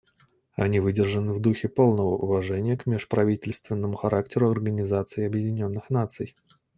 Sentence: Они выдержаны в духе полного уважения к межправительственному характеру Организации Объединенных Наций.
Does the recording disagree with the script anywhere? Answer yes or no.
no